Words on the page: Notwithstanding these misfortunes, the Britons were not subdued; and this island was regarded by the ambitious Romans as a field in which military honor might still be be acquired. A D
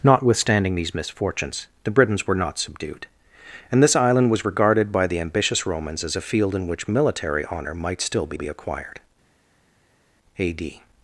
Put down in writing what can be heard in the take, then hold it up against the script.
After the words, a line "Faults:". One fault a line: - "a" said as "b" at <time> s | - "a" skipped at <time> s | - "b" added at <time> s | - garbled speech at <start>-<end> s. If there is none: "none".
Notwithstanding these misfortunes, the Britons were not subdued; and this island was regarded by the ambitious Romans as a field in which military honor might still be be acquired. A D
Faults:
none